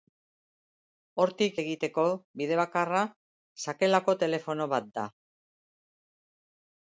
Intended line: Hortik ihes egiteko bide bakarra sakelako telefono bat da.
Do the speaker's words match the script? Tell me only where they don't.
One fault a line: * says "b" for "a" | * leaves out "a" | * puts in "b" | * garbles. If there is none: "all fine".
* leaves out "ihes"